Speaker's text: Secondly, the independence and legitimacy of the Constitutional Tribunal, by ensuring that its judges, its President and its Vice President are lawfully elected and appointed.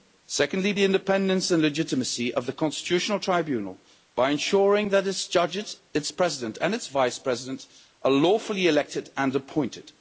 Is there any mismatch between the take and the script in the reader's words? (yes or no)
no